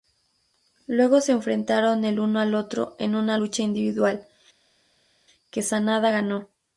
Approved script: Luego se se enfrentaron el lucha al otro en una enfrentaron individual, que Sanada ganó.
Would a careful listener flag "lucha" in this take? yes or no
yes